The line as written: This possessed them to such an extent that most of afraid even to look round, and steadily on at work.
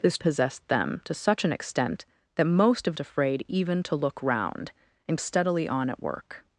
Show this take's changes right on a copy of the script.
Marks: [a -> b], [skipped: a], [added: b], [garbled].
This possessed them to such an extent that most of afraid even to look round, and steadily on at work.